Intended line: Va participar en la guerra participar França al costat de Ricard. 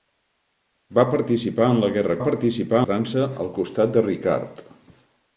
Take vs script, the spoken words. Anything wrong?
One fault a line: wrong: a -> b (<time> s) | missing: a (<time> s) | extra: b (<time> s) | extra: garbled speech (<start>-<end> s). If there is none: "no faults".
no faults